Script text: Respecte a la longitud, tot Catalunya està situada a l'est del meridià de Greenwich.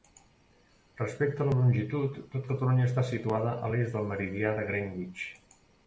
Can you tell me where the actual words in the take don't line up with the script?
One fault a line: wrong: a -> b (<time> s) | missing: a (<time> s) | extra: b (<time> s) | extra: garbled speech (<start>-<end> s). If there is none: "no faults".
no faults